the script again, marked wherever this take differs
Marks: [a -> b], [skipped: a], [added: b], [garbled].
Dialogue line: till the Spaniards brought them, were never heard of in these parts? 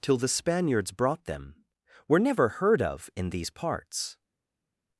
till the Spaniards brought them, were never heard of in these parts?